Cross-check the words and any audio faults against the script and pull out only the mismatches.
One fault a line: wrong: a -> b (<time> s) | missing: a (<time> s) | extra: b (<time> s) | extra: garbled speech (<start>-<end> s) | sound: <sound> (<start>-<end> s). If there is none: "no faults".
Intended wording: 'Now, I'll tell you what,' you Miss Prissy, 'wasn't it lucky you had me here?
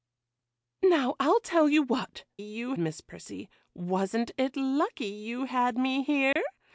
sound: dropout (6.3-6.4 s)